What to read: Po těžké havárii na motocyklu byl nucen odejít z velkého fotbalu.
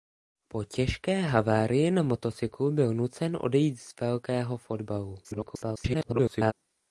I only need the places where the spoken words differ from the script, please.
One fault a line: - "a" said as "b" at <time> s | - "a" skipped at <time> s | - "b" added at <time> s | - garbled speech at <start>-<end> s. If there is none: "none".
- garbled speech at 5.2-6.5 s